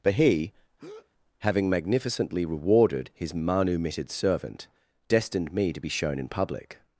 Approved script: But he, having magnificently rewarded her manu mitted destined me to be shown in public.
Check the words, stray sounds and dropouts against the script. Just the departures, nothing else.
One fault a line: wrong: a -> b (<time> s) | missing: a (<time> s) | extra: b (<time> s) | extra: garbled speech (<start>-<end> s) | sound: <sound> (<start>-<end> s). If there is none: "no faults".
sound: breath (0.8-1.1 s)
wrong: her -> his (3.1 s)
extra: servant (4.1 s)